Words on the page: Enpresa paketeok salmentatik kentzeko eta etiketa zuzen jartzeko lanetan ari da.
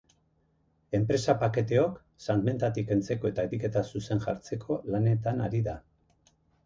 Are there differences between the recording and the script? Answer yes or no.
no